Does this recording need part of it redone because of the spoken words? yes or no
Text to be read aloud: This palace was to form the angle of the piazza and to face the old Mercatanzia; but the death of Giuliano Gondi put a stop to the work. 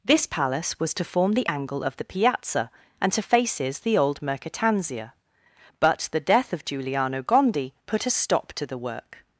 yes